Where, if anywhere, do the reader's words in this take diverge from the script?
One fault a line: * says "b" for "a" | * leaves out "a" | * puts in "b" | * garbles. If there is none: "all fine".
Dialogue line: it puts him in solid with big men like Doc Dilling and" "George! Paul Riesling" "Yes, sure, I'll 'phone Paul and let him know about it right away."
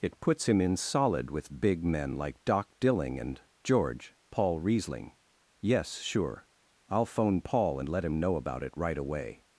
all fine